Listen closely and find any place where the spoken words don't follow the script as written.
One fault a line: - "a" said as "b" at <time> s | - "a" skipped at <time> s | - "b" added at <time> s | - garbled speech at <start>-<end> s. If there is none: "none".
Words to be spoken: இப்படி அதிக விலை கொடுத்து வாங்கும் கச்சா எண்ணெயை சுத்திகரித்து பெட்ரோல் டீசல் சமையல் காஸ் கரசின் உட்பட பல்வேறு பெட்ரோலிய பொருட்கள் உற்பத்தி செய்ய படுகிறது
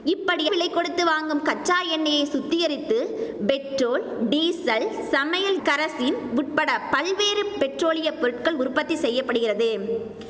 - "அதிக" skipped at 0.5 s
- "காஸ்" skipped at 5.6 s